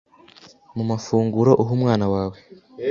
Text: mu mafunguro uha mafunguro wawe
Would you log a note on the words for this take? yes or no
yes